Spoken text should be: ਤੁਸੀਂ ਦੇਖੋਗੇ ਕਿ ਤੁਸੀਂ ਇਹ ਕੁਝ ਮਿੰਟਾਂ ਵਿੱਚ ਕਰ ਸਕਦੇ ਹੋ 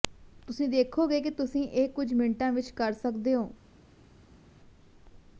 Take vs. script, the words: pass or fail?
pass